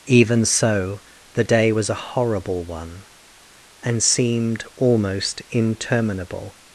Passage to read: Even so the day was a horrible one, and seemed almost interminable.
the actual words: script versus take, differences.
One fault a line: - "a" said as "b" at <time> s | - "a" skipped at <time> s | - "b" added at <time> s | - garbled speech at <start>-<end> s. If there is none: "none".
none